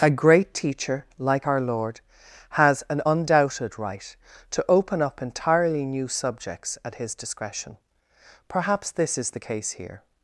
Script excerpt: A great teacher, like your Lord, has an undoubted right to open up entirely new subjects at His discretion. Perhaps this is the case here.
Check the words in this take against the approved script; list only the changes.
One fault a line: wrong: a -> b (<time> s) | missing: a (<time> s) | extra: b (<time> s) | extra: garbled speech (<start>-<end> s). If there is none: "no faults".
wrong: your -> our (1.4 s)